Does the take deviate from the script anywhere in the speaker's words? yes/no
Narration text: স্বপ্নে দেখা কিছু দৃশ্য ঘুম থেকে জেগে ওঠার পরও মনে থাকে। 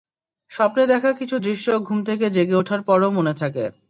no